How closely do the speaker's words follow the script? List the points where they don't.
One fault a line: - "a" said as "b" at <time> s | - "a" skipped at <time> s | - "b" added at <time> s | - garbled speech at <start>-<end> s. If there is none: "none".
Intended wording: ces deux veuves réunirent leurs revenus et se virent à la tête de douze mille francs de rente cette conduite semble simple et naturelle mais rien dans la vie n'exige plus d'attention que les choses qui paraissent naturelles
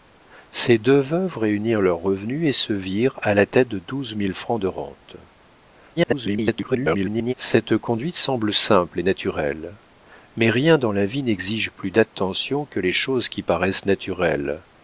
- garbled speech at 6.0-7.3 s